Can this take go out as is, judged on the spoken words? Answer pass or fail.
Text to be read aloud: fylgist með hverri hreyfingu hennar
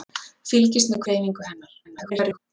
fail